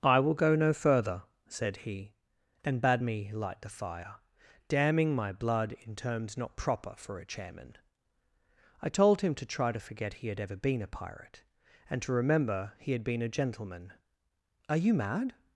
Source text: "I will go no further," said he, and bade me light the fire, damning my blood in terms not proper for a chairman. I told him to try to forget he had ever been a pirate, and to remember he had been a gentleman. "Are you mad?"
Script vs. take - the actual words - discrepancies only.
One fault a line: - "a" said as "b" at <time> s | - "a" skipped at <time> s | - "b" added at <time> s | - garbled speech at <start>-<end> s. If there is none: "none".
none